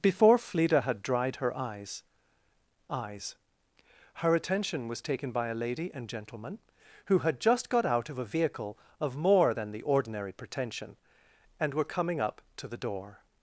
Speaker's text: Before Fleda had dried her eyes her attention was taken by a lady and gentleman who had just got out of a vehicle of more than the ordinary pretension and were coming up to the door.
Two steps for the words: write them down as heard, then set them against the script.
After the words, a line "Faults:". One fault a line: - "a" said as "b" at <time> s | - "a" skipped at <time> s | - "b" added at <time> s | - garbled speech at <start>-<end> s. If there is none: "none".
Before Fleda had dried her eyes eyes her attention was taken by a lady and gentleman who had just got out of a vehicle of more than the ordinary pretension and were coming up to the door.
Faults:
- "eyes" added at 2.9 s